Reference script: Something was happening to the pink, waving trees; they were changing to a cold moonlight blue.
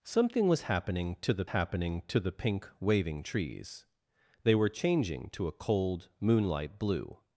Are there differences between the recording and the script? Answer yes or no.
yes